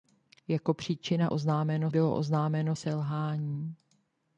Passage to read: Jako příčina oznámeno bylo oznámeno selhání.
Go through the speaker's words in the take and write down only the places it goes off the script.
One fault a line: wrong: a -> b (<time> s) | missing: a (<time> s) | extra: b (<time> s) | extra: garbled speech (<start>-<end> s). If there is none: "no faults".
no faults